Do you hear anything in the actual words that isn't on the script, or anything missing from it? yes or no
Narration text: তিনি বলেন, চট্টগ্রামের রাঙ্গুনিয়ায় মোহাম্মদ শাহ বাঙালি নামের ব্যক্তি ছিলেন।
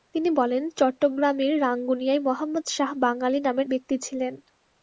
no